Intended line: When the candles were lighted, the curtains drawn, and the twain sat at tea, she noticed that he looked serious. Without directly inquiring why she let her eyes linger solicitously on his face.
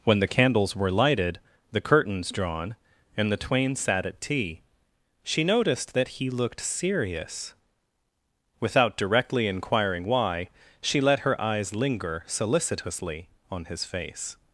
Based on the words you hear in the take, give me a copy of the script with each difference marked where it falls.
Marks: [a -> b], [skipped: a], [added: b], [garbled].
When the candles were lighted, the curtains drawn, and the twain sat at tea, she noticed that he looked serious. Without directly inquiring why she let her eyes linger solicitously on his face.